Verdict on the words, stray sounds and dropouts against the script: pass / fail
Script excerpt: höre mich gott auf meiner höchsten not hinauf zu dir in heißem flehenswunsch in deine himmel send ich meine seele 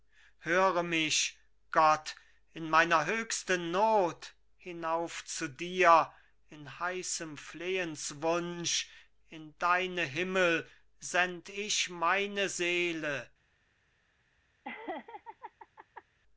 fail